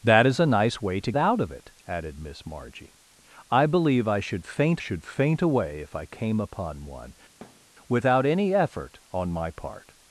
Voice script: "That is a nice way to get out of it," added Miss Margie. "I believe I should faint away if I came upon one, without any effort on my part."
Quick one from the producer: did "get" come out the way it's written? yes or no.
no